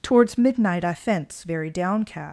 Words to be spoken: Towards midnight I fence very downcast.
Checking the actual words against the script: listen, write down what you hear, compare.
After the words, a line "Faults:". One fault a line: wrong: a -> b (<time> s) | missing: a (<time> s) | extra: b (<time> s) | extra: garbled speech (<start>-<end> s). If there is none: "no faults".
Towards midnight I fence very downcast.
Faults:
no faults